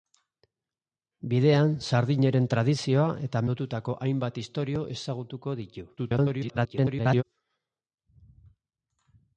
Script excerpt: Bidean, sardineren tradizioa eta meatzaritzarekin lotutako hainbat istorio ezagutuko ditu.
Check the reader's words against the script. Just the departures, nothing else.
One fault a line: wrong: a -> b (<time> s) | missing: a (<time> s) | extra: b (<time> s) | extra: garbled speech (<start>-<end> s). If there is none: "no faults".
missing: meatzaritzarekin (3.4 s)
extra: garbled speech (6.0-7.2 s)